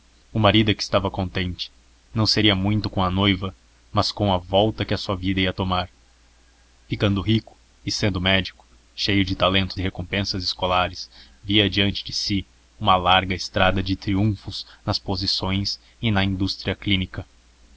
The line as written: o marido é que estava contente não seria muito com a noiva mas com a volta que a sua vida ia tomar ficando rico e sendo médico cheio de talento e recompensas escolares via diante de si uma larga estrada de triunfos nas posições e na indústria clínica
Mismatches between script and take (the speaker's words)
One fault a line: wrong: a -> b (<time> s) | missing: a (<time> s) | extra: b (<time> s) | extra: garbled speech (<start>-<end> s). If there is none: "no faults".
no faults